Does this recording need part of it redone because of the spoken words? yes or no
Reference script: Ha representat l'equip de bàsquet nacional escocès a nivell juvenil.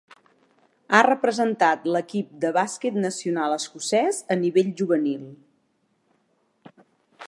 no